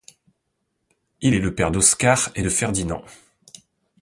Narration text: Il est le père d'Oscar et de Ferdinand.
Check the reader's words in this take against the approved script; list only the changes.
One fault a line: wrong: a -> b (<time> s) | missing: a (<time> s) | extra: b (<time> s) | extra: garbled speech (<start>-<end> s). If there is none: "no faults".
no faults